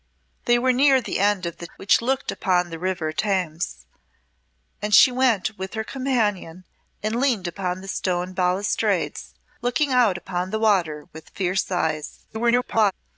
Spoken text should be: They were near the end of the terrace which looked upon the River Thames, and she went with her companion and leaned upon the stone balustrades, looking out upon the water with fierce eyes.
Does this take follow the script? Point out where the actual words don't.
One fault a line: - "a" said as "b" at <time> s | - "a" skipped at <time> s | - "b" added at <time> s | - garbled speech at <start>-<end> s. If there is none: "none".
- "terrace" skipped at 1.7 s
- garbled speech at 12.3-12.9 s